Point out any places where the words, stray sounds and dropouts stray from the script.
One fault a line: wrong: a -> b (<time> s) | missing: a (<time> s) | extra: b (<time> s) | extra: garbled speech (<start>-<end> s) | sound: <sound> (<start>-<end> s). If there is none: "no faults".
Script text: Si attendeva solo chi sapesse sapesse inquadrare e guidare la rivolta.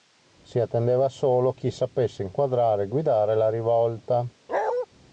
missing: sapesse (2.2 s)
sound: bark (4.5-4.9 s)